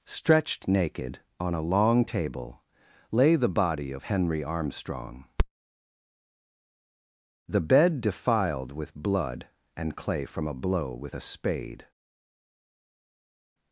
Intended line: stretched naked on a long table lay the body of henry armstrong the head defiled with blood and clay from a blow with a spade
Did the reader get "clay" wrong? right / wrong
right